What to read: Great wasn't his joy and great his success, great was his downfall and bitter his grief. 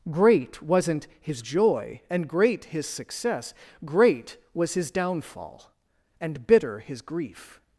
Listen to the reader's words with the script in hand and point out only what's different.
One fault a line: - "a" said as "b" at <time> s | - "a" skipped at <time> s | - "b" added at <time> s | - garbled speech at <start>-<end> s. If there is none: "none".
none